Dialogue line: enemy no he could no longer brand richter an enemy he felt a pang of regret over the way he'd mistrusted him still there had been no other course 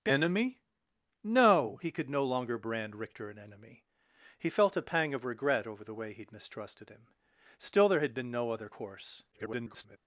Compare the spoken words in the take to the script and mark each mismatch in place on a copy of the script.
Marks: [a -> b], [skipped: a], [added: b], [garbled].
enemy no he could no longer brand richter an enemy he felt a pang of regret over the way he'd mistrusted him still there had been no other course [garbled]